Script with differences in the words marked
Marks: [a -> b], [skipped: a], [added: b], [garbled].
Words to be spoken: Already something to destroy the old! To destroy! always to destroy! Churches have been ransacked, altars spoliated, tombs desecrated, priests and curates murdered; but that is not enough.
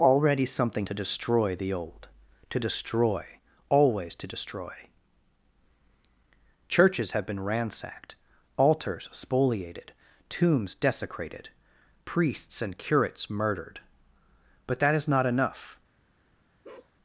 Already something to destroy the old! To destroy! always to destroy! Churches have been ransacked, altars spoliated, tombs desecrated, priests and curates murdered; but that is not enough.